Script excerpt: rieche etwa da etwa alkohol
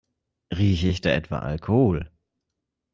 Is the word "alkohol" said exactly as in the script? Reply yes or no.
yes